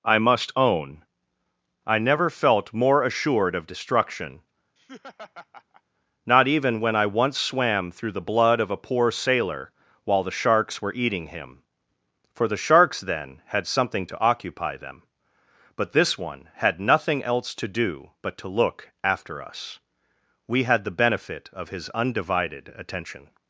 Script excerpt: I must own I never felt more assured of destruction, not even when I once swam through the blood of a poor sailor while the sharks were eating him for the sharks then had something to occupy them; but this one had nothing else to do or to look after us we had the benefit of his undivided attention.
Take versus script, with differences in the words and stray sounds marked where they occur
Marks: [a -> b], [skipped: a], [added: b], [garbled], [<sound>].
I must own I never felt more assured of destruction, [laugh] not even when I once swam through the blood of a poor sailor while the sharks were eating him for the sharks then had something to occupy them; but this one had nothing else to do [or -> but] to look after us we had the benefit of his undivided attention.